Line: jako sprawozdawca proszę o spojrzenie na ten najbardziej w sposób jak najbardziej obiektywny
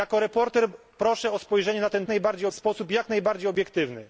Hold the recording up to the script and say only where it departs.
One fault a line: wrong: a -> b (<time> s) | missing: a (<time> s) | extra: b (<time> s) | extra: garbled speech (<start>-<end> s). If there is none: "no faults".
no faults